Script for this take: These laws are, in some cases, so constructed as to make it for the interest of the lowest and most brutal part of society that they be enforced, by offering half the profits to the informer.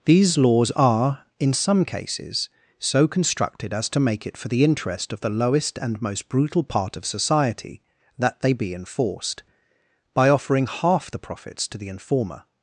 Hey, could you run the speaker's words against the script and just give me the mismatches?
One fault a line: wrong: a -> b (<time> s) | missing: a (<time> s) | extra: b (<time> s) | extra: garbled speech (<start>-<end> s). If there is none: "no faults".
no faults